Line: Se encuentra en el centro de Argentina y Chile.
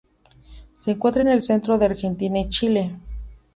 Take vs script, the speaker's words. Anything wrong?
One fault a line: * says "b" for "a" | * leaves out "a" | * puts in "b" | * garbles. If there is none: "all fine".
all fine